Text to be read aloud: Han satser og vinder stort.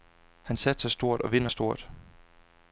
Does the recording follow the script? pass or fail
fail